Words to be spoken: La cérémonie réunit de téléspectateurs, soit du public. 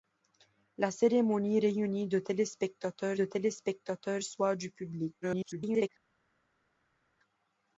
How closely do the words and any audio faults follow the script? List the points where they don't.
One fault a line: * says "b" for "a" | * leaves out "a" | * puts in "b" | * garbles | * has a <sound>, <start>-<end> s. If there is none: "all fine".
* puts in "de téléspectateurs"
* garbles